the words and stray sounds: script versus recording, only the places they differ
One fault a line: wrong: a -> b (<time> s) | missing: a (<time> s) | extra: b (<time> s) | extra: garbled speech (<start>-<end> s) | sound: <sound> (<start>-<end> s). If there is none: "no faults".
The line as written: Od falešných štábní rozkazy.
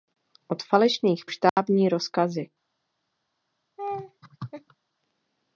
sound: dropout (1.5-1.6 s)
sound: laugh (3.8-4.8 s)